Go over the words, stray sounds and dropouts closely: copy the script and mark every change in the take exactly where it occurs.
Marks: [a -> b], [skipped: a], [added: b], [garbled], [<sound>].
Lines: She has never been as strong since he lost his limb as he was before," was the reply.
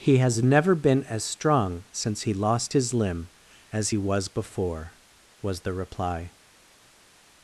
[She -> He] has never been as strong since he lost his limb as he was before," was the reply.